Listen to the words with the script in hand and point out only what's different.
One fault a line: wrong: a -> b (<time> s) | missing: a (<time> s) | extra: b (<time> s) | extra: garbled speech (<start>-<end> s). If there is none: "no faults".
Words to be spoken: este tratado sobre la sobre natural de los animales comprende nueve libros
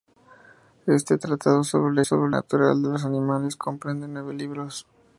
no faults